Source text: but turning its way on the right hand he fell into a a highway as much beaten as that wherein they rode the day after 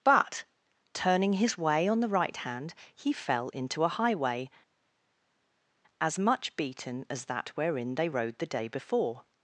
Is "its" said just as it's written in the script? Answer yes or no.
no